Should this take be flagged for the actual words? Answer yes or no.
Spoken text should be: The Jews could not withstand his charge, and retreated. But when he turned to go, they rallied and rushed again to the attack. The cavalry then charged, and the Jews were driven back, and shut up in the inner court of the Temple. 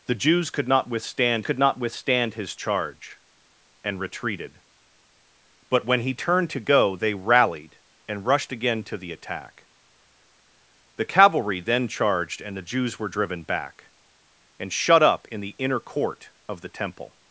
yes